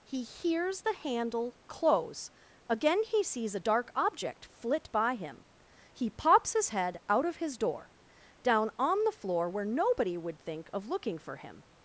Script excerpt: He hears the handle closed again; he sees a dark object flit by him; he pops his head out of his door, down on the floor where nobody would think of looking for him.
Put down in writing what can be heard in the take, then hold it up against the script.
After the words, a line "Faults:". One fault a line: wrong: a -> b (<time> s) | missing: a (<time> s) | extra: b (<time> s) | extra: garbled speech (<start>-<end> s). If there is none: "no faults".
He hears the handle close again; he sees a dark object flit by him; he pops his head out of his door, down on the floor where nobody would think of looking for him.
Faults:
wrong: closed -> close (1.7 s)